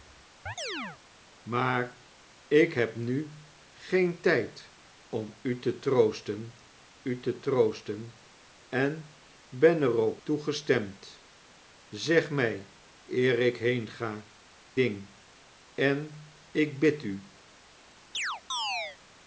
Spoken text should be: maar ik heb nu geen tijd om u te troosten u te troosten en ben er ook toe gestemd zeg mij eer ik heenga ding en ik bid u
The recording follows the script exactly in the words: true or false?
true